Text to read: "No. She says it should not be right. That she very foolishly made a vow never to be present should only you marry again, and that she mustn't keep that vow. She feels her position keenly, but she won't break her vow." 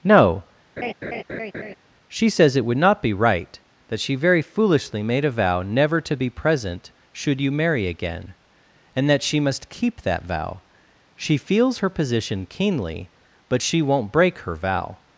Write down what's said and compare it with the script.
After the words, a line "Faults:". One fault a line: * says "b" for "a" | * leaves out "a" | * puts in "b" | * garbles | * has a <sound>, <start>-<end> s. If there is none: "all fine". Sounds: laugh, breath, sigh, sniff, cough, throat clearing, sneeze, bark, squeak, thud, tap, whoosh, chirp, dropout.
"No. She says it would not be right. That she very foolishly made a vow never to be present should you marry again, and that she must keep that vow. She feels her position keenly, but she won't break her vow."
Faults:
* has a laugh, 0.8-1.8 s
* says "would" for "should"
* leaves out "only"
* says "must" for "mustn't"